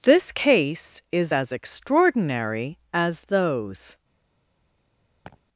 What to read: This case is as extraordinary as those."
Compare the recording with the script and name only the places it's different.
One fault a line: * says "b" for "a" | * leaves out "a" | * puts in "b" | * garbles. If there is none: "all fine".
all fine